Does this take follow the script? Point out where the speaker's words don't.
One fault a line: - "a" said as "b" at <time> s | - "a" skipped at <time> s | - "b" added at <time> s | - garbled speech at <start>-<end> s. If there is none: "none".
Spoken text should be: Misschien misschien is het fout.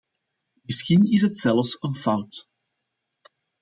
- "misschien" skipped at 1.1 s
- "zelfs een" added at 1.4 s